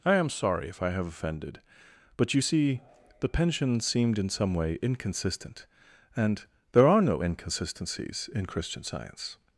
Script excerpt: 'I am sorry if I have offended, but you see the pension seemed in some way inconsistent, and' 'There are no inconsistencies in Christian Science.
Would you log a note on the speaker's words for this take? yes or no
no